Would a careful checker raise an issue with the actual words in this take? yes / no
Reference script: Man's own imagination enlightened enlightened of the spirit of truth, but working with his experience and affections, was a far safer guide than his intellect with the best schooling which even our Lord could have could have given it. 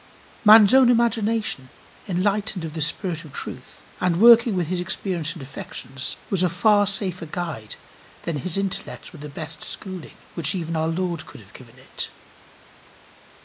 yes